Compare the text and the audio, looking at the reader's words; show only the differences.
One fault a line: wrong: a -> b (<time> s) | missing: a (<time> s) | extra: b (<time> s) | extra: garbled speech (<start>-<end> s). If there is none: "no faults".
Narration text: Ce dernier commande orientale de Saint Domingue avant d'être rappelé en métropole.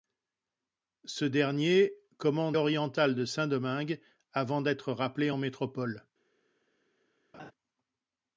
no faults